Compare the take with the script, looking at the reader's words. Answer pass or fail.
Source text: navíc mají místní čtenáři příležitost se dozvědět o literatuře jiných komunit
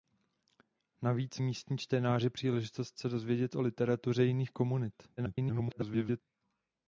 fail